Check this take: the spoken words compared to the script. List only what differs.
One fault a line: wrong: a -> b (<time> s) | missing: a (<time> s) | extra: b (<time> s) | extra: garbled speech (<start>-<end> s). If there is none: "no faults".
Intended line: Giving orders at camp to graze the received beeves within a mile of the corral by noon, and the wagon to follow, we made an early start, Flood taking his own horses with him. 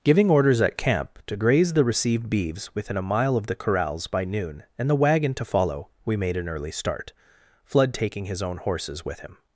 wrong: corral -> corrals (3.5 s)